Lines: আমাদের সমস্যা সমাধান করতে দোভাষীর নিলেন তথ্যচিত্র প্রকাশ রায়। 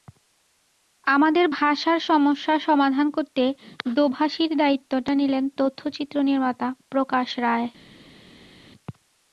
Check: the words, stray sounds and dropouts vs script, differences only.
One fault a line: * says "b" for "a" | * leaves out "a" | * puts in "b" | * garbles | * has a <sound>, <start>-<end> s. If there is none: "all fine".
* puts in "ভাষার"
* puts in "দায়িত্বটা"
* puts in "নির্মাতা"